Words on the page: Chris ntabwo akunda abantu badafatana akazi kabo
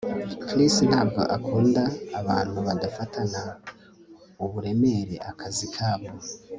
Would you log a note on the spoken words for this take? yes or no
yes